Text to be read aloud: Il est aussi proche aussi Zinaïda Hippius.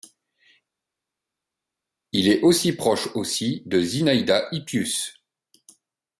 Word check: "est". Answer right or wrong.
right